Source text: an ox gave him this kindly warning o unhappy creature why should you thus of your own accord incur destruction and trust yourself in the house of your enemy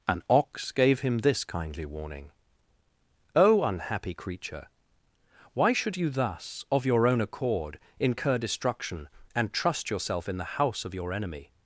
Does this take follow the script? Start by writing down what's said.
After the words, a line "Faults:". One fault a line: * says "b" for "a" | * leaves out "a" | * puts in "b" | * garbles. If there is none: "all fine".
an ox gave him this kindly warning o unhappy creature why should you thus of your own accord incur destruction and trust yourself in the house of your enemy
Faults:
all fine